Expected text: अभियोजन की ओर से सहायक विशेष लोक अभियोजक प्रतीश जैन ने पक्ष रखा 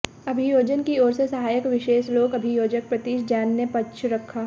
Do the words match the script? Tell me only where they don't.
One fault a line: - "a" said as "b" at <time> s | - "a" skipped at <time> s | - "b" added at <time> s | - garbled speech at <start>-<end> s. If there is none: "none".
none